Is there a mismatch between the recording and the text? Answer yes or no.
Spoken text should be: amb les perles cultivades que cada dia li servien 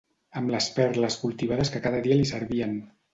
no